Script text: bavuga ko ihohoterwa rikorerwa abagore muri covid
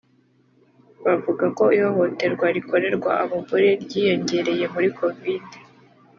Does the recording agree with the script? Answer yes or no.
no